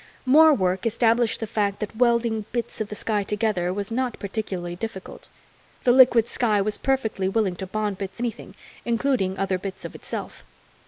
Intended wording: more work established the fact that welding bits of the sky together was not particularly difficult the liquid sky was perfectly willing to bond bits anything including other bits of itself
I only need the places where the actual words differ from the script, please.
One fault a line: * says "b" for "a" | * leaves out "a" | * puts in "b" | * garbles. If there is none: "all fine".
all fine